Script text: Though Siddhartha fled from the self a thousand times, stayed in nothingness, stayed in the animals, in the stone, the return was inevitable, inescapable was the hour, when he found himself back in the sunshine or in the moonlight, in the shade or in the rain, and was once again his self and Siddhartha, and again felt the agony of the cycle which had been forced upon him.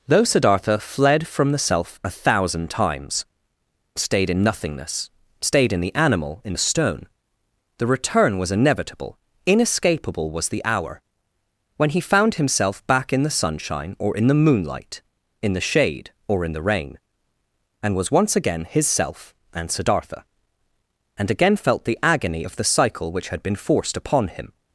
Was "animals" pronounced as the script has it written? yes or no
no